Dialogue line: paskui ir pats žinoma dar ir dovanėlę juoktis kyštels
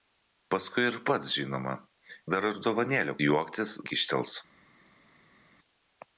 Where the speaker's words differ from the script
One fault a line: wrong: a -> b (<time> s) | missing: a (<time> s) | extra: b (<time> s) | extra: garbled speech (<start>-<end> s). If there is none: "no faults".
no faults